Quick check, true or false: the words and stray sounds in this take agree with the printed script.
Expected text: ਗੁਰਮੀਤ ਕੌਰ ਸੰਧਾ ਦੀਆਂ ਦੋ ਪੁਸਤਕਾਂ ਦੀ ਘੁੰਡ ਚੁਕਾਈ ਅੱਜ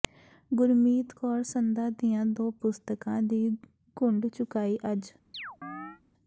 false